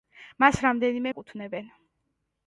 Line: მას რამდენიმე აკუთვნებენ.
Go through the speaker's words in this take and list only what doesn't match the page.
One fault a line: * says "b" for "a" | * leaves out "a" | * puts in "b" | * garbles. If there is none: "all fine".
all fine